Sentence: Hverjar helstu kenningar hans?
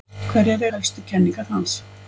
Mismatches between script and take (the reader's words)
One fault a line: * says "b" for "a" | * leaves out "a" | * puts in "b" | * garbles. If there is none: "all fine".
all fine